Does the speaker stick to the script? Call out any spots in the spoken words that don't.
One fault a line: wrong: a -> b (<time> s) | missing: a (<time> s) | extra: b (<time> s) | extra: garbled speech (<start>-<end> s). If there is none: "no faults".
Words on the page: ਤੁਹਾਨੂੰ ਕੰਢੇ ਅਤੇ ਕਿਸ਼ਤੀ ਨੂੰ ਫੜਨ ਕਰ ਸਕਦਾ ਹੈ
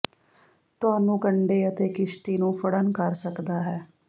no faults